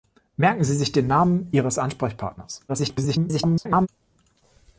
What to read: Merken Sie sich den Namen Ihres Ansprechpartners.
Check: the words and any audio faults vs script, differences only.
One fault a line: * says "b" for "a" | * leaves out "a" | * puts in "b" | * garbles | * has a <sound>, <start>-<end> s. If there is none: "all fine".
* garbles